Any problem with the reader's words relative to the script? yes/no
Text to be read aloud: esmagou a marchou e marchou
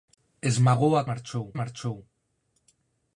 no